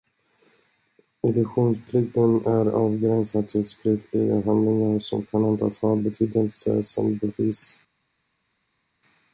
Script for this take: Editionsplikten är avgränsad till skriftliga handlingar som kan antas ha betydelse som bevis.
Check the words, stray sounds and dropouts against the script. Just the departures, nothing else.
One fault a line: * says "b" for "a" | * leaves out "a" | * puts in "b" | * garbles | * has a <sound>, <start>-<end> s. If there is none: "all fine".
all fine